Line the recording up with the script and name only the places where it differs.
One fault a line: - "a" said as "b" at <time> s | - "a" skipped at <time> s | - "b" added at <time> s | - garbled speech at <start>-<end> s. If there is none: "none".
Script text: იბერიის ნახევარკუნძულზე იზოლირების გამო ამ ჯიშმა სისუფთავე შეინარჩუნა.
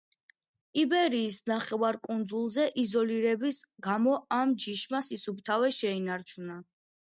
none